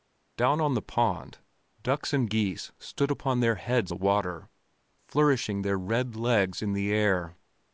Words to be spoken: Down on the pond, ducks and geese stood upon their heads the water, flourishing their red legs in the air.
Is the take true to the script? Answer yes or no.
yes